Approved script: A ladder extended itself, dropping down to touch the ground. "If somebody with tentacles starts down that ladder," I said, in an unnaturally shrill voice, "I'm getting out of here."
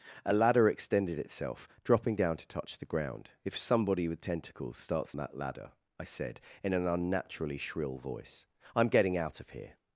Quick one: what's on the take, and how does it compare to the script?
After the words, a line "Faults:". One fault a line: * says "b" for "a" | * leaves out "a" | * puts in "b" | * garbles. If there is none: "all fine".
A ladder extended itself, dropping down to touch the ground. "If somebody with tentacles starts that ladder," I said, in an unnaturally shrill voice, "I'm getting out of here."
Faults:
* leaves out "down"